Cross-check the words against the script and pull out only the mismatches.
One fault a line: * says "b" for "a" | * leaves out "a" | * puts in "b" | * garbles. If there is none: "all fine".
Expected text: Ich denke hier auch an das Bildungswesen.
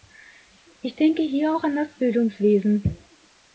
all fine